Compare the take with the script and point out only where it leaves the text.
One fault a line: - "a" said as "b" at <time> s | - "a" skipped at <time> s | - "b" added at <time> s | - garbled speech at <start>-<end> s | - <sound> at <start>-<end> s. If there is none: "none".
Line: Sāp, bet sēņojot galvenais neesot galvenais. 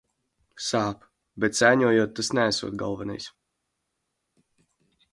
- "galvenais" said as "tas" at 2.2 s